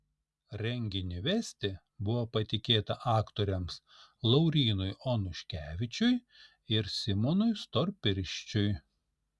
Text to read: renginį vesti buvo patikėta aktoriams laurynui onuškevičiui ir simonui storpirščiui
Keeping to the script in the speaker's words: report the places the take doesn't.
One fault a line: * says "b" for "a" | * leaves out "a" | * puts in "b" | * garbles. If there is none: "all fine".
all fine